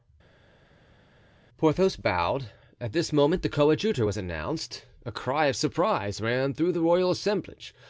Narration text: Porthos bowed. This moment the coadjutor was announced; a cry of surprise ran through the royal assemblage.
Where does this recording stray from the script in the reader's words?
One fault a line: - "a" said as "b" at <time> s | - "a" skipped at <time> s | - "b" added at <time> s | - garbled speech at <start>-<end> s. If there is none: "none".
- "At" added at 2.8 s